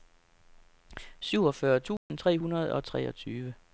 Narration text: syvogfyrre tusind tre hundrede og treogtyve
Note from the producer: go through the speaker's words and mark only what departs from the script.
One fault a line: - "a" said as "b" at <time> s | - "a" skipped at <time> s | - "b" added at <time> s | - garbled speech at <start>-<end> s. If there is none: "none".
none